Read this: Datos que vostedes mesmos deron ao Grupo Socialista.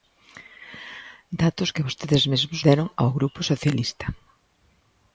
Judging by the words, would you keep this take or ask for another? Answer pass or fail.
pass